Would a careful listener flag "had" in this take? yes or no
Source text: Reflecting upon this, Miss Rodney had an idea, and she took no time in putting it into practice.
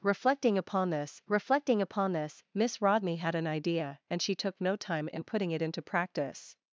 no